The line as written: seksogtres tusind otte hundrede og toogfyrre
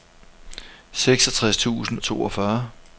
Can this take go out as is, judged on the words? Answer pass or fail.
fail